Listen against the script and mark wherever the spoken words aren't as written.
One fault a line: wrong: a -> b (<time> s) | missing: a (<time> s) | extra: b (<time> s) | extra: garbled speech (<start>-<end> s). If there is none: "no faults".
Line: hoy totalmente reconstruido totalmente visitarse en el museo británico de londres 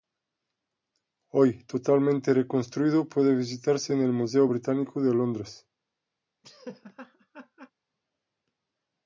wrong: totalmente -> puede (3.1 s)